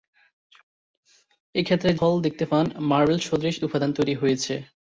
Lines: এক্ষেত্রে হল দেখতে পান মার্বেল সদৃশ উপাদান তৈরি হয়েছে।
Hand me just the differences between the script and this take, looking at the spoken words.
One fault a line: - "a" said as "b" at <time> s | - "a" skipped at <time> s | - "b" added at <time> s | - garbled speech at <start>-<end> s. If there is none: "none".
none